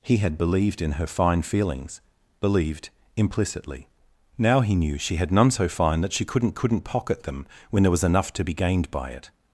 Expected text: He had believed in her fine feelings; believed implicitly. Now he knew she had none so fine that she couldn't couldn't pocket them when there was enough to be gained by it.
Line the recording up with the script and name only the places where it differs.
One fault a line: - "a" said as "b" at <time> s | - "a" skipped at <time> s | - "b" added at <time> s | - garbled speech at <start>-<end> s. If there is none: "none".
none